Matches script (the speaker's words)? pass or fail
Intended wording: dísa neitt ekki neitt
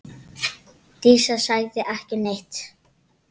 fail